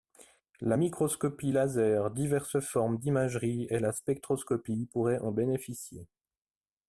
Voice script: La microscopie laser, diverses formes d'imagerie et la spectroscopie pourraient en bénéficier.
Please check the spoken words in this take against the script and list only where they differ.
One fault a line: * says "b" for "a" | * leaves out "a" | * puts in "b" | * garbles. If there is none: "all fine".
all fine